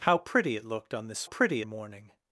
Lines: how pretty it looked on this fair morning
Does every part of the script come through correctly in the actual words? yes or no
no